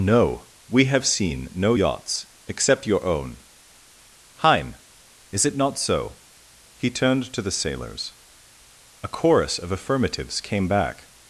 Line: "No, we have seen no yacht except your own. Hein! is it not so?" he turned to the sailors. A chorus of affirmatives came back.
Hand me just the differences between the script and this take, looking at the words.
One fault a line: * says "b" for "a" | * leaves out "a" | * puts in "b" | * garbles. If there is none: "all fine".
* says "yachts" for "yacht"